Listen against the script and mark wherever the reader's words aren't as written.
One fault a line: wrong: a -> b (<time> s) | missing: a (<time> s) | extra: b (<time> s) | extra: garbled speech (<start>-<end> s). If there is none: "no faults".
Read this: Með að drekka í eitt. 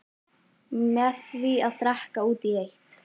extra: því (1.3 s)
extra: út (2.3 s)